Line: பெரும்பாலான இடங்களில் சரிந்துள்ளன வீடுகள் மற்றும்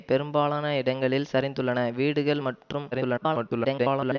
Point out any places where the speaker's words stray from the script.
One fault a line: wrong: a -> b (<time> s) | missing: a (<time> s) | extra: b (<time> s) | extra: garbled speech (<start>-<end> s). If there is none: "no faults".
extra: garbled speech (2.9-4.2 s)